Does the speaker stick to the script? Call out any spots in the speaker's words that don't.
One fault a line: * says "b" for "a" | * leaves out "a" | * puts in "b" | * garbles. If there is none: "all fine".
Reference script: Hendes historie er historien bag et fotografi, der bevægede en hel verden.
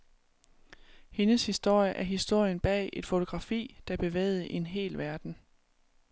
all fine